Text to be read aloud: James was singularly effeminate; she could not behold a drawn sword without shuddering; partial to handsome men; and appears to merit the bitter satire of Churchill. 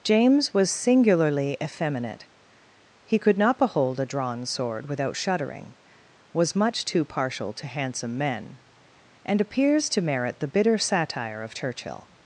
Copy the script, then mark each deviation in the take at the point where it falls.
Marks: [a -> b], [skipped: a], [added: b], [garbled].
James was singularly effeminate; [she -> he] could not behold a drawn sword without shuddering; [added: was much too] partial to handsome men; and appears to merit the bitter satire of Churchill.